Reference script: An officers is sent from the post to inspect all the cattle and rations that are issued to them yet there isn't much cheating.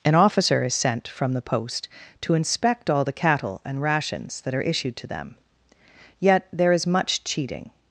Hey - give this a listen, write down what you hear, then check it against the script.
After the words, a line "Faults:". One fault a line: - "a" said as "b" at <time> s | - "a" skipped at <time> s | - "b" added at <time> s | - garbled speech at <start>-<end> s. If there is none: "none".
An officer is sent from the post to inspect all the cattle and rations that are issued to them yet there is much cheating.
Faults:
- "officers" said as "officer" at 0.1 s
- "isn't" said as "is" at 6.7 s